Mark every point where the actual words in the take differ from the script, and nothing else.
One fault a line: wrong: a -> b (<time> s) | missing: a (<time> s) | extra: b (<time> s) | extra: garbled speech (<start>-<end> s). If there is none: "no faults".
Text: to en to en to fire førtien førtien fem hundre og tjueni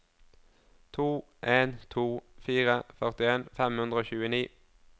missing: en to (2.0 s)
missing: førtien (3.5 s)